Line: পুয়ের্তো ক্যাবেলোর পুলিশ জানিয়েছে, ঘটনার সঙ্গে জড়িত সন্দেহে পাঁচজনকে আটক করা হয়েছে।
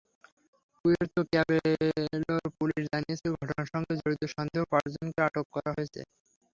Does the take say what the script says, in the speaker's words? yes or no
yes